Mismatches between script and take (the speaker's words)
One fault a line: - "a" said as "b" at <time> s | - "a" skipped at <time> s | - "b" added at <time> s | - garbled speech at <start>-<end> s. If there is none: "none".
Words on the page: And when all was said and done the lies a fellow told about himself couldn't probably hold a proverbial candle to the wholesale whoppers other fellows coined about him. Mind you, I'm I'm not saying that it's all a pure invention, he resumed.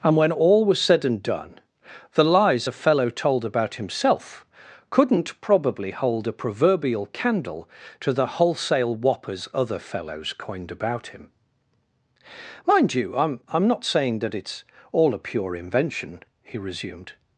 none